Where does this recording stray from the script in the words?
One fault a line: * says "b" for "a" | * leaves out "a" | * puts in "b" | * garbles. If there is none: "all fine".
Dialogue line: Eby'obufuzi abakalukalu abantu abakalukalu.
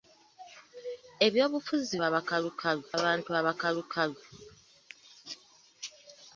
all fine